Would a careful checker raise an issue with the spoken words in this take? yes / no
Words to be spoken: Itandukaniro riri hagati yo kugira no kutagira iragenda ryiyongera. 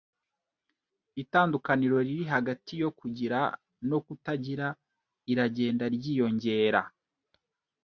no